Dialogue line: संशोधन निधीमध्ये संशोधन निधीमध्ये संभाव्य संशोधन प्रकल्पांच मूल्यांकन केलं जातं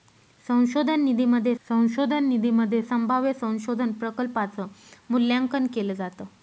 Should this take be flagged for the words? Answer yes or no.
no